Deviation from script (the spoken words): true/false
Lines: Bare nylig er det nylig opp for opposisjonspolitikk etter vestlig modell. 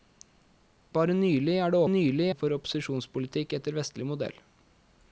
false